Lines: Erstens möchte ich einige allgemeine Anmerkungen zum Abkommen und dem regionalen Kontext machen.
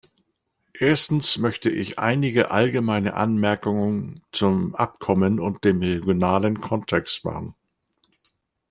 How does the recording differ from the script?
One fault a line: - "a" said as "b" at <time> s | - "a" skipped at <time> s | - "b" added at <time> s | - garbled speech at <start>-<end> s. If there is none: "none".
none